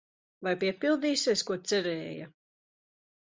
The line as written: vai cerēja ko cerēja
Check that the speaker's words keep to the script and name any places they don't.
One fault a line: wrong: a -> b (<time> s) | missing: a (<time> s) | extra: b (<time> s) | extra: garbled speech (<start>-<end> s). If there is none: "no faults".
wrong: cerēja -> piepildīsies (0.6 s)